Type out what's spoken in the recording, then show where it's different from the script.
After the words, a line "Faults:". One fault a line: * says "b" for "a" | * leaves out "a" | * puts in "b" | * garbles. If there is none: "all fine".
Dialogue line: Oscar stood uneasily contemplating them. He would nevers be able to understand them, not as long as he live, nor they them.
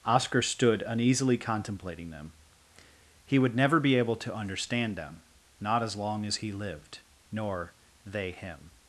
Oscar stood uneasily contemplating them. He would never be able to understand them, not as long as he lived, nor they him.
Faults:
* says "never" for "nevers"
* says "lived" for "live"
* says "him" for "them"